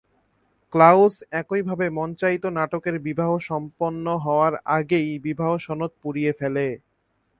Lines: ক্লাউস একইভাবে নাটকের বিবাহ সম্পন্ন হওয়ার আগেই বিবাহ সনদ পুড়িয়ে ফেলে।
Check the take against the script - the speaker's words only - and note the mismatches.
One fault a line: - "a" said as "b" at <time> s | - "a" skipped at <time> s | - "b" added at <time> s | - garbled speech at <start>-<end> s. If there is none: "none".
- "মঞ্চায়িত" added at 1.9 s